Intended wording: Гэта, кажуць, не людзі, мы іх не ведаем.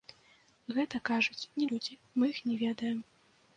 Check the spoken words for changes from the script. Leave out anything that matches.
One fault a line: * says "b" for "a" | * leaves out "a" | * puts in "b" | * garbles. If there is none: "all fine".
all fine